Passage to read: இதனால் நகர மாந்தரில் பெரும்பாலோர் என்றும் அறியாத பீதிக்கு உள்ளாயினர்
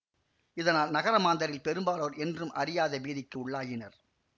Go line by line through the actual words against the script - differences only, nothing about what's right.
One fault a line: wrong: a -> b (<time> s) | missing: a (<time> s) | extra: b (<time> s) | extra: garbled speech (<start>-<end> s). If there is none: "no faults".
no faults